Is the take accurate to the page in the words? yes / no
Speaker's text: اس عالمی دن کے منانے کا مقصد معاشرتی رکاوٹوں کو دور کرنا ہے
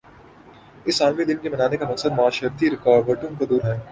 no